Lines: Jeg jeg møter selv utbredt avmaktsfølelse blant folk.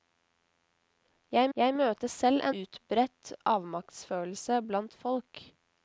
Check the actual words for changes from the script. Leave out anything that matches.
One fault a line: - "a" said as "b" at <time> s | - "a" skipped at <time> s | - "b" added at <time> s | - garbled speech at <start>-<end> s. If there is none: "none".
none